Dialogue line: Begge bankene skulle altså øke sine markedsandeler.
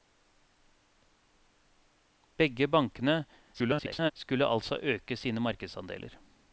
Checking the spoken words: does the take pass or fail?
fail